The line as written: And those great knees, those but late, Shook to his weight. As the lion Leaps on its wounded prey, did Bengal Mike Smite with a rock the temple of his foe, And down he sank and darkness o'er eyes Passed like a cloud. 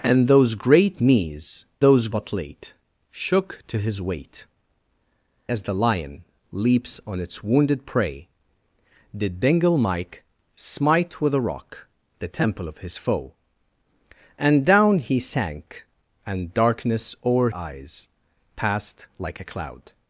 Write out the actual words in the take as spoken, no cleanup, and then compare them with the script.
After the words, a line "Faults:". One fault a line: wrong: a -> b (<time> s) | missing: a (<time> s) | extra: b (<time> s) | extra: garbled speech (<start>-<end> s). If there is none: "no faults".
And those great knees, those but late, Shook to his weight. As the lion Leaps on its wounded prey, did Bengal Mike Smite with a rock the temple of his foe, And down he sank and darkness o'er eyes Passed like a cloud.
Faults:
no faults